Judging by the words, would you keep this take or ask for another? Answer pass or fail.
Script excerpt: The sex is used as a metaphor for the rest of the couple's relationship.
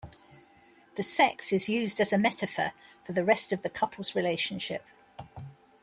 pass